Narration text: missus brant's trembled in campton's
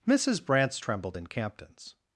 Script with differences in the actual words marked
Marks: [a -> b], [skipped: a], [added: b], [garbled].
missus brant's trembled in campton's